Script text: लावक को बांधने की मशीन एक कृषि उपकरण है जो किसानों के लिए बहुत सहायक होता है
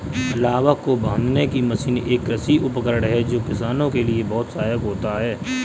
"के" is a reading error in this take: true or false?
false